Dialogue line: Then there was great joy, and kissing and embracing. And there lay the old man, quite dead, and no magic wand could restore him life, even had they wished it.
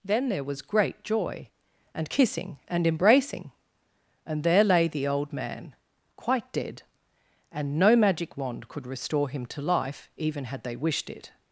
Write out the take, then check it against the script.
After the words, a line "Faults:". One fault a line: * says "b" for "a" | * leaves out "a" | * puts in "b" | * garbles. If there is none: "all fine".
Then there was great joy, and kissing and embracing. And there lay the old man, quite dead, and no magic wand could restore him to life, even had they wished it.
Faults:
* puts in "to"